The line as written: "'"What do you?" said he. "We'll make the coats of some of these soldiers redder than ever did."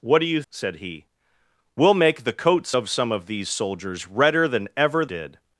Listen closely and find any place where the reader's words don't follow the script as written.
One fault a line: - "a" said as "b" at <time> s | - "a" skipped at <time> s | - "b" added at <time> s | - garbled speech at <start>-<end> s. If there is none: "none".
none